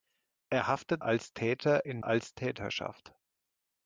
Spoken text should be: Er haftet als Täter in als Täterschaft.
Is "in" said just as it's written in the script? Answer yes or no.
yes